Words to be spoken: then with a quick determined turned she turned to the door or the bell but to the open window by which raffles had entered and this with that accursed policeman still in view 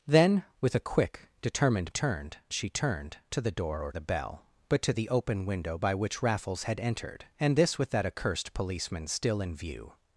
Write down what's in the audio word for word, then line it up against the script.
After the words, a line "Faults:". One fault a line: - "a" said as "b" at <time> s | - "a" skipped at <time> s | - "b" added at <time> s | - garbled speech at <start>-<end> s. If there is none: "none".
then with a quick determined turned she turned to the door or the bell but to the open window by which raffles had entered and this with that accursed policeman still in view
Faults:
none